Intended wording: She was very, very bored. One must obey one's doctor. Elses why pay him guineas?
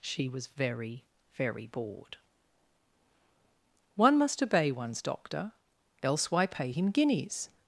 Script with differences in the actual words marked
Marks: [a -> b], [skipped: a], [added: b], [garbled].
She was very, very bored. One must obey one's doctor. [Elses -> Else] why pay him guineas?